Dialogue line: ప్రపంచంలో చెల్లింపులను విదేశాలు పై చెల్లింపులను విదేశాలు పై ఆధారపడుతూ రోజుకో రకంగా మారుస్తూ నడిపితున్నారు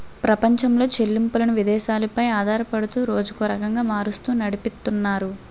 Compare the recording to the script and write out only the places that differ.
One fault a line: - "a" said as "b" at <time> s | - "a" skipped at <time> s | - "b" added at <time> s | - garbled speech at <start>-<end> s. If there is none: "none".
- "చెల్లింపులను విదేశాలు పై" skipped at 2.2 s